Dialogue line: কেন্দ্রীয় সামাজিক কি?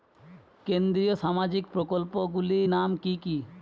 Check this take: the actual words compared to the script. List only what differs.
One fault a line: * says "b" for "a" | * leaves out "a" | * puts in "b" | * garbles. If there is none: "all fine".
* puts in "প্রকল্পগুলি নাম কি"